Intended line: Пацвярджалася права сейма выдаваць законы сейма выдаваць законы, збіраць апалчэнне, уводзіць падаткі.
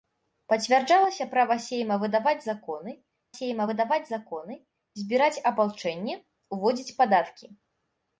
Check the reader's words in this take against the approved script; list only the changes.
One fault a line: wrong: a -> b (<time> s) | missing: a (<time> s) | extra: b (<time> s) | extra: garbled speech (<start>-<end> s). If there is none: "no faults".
no faults